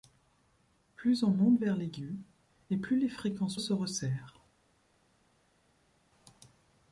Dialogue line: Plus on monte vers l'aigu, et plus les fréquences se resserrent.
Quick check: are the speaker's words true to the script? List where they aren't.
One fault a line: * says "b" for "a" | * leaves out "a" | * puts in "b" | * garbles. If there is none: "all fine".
all fine